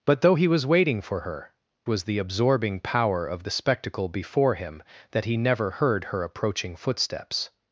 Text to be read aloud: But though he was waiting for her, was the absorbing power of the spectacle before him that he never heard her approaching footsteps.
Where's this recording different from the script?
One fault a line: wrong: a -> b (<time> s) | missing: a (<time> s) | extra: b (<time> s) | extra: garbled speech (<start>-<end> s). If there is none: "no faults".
no faults